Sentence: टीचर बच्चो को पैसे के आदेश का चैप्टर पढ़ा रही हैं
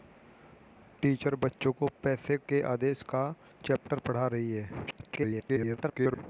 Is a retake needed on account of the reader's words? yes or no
yes